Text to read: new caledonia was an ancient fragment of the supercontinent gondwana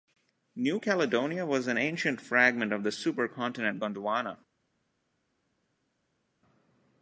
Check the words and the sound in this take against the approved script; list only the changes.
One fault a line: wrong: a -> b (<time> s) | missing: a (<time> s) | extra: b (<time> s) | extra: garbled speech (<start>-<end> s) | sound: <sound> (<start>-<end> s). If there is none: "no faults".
no faults